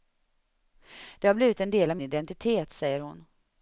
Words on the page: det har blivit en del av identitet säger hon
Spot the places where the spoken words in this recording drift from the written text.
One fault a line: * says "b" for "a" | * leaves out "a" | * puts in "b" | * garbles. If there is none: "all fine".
all fine